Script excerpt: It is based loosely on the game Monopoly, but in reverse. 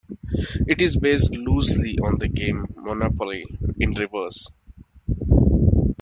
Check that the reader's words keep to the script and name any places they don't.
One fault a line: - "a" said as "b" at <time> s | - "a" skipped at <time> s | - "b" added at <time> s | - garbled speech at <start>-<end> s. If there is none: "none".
- "but" skipped at 3.5 s